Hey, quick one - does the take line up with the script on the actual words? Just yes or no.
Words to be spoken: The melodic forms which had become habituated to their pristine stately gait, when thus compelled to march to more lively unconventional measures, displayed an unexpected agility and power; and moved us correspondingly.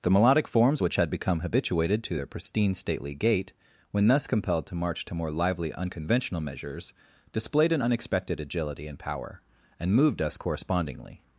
yes